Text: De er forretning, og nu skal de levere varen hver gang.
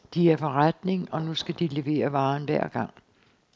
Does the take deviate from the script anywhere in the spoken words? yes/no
no